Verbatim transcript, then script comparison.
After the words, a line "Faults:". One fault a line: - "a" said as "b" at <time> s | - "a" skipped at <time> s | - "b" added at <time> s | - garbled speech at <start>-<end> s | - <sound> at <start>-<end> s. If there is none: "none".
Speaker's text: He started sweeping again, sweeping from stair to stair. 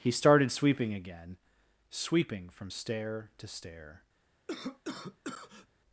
He started sweeping again, sweeping from stair to stair.
Faults:
- cough at 4.5-5.7 s